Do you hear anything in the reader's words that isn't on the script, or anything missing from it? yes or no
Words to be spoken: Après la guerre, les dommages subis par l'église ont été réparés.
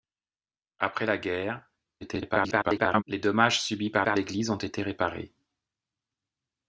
yes